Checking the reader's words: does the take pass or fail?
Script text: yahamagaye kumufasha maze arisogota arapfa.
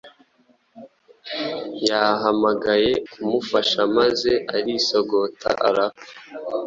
pass